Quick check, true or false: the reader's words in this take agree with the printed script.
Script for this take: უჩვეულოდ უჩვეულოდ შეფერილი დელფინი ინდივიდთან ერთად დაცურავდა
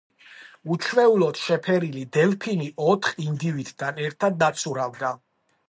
false